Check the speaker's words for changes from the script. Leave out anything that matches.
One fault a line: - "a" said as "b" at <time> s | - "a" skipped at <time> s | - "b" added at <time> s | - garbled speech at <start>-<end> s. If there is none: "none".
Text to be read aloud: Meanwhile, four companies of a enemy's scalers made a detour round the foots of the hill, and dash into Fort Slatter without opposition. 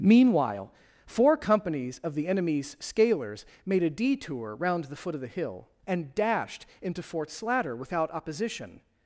- "a" said as "the" at 2.1 s
- "foots" said as "foot" at 5.0 s
- "dash" said as "dashed" at 6.2 s